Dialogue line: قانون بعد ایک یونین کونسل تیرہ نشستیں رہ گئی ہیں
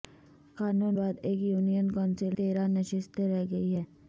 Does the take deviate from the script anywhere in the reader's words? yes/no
no